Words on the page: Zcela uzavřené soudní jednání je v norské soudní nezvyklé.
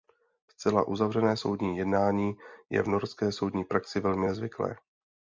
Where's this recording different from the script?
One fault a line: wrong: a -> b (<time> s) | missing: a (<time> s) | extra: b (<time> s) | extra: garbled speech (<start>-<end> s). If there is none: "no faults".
extra: praxi velmi (3.6 s)